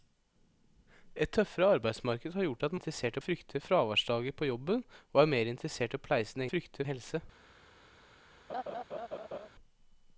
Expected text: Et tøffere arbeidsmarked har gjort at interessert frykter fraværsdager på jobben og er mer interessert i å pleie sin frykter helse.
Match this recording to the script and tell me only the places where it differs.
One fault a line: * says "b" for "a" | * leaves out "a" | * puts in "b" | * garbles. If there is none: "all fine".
all fine